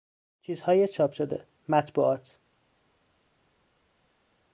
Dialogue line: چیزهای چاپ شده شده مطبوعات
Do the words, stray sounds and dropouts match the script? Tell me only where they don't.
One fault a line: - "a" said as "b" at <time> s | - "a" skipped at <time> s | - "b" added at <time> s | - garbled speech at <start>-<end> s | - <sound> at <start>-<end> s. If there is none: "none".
- "شده" skipped at 1.4 s